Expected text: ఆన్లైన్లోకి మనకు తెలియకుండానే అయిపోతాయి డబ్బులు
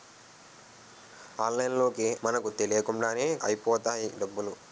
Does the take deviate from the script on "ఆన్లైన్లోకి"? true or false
false